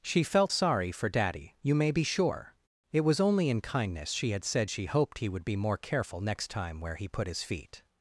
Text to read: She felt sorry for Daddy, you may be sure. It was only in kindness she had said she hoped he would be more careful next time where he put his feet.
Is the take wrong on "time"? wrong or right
right